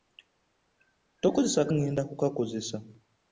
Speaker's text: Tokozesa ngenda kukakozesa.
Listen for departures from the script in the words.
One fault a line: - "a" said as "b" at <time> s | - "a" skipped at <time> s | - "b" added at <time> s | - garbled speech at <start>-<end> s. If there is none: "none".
none